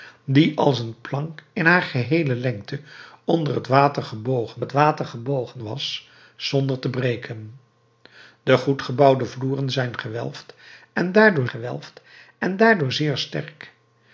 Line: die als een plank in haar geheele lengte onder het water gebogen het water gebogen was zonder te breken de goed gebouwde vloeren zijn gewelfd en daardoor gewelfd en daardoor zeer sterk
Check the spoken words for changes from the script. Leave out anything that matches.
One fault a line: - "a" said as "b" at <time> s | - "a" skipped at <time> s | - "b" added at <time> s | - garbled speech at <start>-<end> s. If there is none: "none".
none